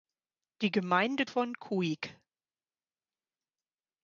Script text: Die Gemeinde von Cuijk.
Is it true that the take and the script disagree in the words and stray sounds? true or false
false